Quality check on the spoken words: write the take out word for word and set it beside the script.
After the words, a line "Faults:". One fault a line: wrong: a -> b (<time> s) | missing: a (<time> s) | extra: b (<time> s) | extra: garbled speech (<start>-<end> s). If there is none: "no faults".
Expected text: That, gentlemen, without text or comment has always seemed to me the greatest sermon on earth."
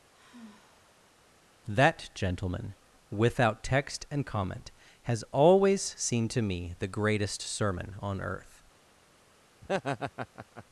That, gentlemen, without text and comment has always seemed to me the greatest sermon on earth."
Faults:
wrong: or -> and (4.1 s)